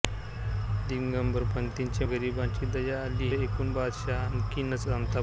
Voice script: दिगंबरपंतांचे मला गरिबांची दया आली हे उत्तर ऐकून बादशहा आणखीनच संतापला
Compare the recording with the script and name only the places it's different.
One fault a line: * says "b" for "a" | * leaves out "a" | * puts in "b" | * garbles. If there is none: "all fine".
* leaves out "मला"
* leaves out "हे उत्तर"